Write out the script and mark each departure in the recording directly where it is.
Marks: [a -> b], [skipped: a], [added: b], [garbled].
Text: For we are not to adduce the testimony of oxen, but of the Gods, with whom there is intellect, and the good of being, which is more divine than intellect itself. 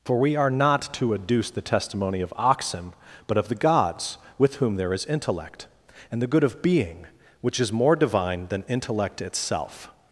For we are not to adduce the testimony of oxen, but of the Gods, with whom there is intellect, and the good of being, which is more divine than intellect itself.